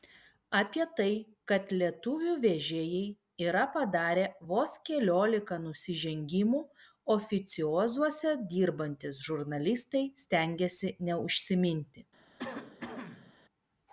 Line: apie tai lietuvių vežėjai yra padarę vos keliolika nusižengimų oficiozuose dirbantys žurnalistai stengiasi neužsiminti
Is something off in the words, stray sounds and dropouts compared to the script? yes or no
yes